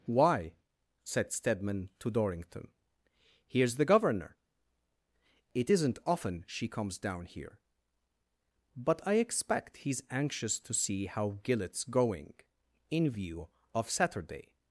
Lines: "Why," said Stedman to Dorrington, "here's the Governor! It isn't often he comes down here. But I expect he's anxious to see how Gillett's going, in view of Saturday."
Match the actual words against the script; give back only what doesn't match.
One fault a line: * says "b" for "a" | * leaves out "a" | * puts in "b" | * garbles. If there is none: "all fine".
* says "she" for "he"